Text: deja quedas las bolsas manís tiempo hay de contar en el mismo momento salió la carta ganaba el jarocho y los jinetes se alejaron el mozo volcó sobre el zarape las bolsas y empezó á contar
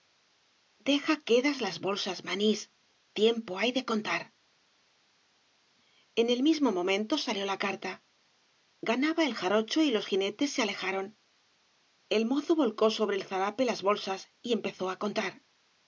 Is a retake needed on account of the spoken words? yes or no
no